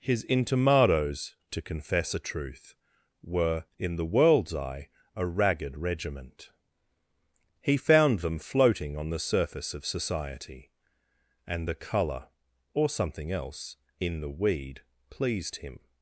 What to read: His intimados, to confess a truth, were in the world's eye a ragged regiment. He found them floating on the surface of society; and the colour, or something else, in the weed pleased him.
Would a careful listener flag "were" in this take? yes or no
no